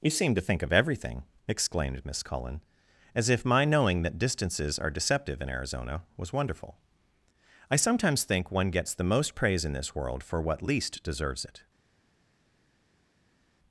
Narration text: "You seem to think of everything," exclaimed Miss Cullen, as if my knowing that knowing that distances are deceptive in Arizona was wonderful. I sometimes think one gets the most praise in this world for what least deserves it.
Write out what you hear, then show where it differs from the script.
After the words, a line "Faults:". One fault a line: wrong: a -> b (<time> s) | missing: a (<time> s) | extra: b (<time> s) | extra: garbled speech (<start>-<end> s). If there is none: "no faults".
"You seem to think of everything," exclaimed Miss Cullen, as if my knowing that distances are deceptive in Arizona was wonderful. I sometimes think one gets the most praise in this world for what least deserves it.
Faults:
missing: knowing that (4.2 s)